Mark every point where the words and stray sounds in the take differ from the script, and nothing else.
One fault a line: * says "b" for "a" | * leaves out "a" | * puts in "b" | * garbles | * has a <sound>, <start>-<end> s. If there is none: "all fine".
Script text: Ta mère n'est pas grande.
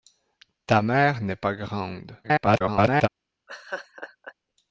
* garbles
* has a laugh, 3.5-4.3 s